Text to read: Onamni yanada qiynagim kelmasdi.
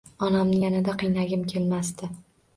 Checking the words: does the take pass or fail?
pass